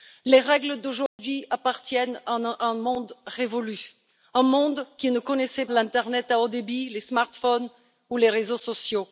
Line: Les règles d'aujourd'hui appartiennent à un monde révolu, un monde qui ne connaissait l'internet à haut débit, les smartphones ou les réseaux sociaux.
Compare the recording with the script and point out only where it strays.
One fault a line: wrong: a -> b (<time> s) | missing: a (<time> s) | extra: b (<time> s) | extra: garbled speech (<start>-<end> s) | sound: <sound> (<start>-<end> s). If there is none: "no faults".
sound: dropout (1.1-1.2 s)